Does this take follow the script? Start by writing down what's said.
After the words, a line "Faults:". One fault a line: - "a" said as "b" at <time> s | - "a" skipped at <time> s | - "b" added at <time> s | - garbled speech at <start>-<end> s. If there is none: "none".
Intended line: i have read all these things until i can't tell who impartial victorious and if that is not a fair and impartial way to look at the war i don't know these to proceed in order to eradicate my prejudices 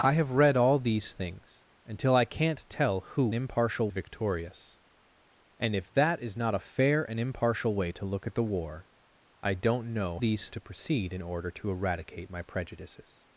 i have read all these things until i can't tell who impartial victorious and if that is not a fair and impartial way to look at the war i don't know these to proceed in order to eradicate my prejudices
Faults:
none